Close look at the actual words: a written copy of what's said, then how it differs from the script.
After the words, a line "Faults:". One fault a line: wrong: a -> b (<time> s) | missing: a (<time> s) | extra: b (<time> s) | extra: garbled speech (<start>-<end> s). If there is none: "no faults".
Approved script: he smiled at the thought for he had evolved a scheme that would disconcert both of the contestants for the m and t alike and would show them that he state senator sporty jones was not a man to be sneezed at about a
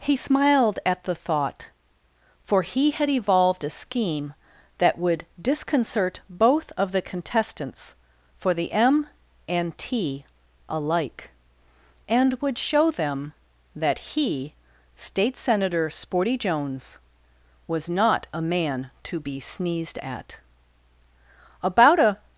he smiled at the thought for he had evolved a scheme that would disconcert both of the contestants for the m and t alike and would show them that he state senator sporty jones was not a man to be sneezed at about a
Faults:
no faults